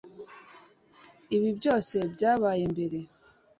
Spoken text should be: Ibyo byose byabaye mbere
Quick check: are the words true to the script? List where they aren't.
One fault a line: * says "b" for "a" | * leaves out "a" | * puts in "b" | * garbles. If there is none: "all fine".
* says "Ibi" for "Ibyo"